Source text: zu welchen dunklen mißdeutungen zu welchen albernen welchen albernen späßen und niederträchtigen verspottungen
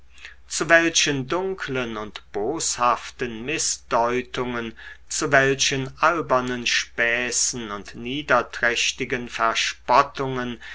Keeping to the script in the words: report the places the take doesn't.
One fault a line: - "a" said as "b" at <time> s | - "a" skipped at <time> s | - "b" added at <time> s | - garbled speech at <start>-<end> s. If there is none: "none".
- "und boshaften" added at 1.9 s
- "welchen albernen" skipped at 6.7 s